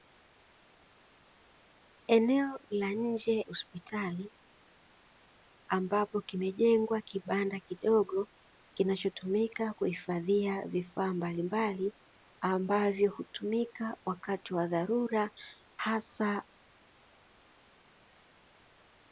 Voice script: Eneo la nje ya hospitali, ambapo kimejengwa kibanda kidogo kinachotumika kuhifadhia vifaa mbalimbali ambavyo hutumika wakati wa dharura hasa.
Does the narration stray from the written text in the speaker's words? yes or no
yes